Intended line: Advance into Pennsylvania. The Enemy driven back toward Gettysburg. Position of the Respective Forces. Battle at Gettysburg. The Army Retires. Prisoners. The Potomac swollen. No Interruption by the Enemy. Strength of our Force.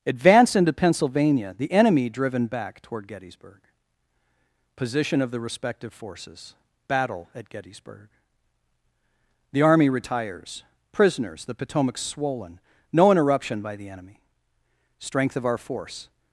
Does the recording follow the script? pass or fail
pass